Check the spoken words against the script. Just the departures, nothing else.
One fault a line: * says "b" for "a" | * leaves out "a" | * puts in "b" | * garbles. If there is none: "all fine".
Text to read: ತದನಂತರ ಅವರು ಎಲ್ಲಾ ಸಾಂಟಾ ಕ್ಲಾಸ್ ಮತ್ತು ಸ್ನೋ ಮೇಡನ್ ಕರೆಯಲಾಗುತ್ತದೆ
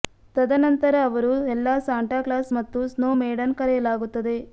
all fine